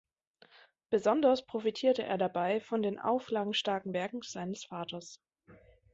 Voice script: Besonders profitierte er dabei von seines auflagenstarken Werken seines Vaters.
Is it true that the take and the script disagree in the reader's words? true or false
true